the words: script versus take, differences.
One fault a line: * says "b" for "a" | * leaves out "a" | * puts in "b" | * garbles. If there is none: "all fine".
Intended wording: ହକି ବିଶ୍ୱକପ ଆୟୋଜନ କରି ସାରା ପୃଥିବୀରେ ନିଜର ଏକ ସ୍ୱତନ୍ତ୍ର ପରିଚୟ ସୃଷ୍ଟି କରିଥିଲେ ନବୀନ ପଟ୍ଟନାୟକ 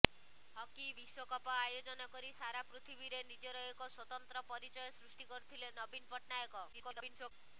* garbles